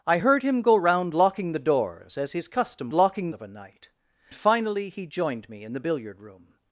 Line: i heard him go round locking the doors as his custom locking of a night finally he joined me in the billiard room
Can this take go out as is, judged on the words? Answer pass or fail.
pass